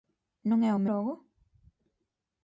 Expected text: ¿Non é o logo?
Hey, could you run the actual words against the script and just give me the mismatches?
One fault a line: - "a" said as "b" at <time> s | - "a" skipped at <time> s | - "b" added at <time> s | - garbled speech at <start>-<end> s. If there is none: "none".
none